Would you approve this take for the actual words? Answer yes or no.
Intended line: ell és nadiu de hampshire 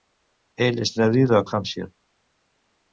yes